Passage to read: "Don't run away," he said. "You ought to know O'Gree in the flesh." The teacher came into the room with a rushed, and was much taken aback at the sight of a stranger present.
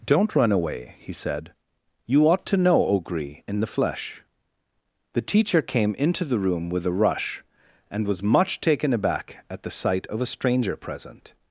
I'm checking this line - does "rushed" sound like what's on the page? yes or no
no